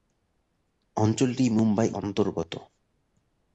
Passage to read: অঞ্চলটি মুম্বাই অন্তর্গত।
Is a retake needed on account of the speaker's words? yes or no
no